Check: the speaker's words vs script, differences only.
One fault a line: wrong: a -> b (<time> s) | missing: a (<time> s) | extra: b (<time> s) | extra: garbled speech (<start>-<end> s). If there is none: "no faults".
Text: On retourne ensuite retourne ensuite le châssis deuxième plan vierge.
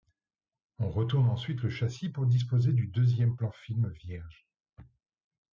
wrong: retourne ensuite le châssis -> le châssis pour disposer du (1.6 s)
extra: film (3.5 s)